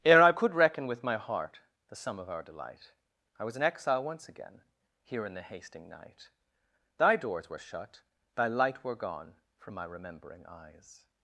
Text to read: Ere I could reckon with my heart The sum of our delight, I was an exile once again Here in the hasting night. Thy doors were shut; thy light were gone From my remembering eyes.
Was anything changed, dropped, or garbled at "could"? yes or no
no